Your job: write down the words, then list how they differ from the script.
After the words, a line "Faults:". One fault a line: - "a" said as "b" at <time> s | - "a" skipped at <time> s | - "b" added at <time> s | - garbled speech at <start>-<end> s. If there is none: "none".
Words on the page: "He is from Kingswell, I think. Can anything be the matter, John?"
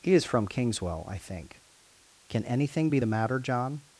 "He is from Kingswell, I think. Can anything be the matter, John?"
Faults:
none